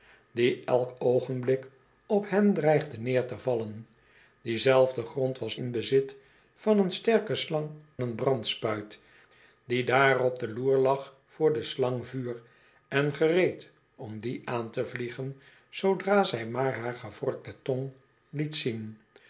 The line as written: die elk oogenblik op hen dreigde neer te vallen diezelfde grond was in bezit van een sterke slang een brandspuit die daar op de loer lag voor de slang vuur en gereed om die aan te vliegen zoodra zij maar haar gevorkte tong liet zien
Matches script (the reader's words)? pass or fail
pass